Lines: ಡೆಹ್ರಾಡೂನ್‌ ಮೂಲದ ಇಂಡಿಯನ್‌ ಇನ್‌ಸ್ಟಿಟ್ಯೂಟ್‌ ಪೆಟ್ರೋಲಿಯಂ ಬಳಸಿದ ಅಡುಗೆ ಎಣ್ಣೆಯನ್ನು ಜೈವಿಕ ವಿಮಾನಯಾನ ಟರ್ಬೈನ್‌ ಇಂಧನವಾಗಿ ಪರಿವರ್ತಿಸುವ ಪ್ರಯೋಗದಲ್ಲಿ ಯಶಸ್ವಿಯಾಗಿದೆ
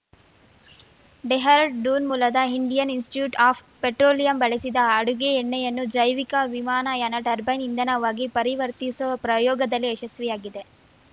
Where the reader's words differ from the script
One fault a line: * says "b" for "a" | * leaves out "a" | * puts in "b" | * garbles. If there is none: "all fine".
* puts in "ಆಫ್"